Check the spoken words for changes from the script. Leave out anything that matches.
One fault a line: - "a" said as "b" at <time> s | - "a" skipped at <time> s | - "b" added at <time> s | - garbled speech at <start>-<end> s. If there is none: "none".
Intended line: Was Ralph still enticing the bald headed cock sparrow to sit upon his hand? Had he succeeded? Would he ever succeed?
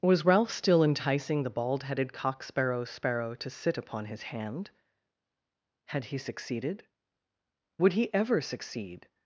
- "sparrow" added at 2.9 s